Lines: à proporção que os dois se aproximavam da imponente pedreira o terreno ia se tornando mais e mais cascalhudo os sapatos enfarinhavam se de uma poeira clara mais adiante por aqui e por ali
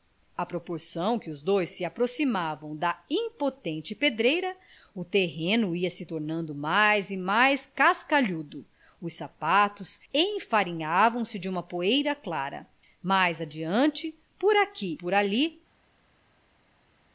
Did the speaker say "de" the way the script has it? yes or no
yes